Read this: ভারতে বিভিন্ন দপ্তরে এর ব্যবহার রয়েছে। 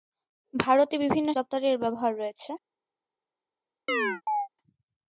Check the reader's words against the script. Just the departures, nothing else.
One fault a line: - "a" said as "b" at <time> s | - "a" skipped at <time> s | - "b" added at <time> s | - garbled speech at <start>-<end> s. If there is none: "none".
none